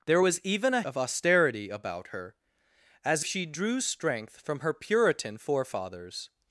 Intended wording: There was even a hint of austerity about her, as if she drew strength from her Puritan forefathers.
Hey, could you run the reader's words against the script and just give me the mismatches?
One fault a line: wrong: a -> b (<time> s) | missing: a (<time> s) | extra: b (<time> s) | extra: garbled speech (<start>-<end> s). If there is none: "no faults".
missing: hint (0.8 s)
missing: if (3.2 s)